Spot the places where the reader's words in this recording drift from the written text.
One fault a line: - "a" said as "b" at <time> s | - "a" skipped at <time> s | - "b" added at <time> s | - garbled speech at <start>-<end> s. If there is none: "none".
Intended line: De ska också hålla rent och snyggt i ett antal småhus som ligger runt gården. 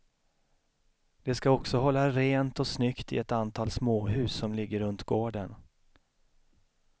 none